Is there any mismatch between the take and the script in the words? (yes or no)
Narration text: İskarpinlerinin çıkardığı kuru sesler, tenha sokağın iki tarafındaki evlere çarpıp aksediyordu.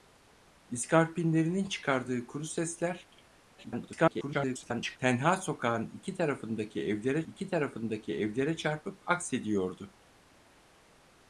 yes